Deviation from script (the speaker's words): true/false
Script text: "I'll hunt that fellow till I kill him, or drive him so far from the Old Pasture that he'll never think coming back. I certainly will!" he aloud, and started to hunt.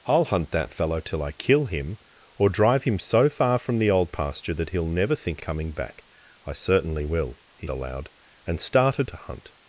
false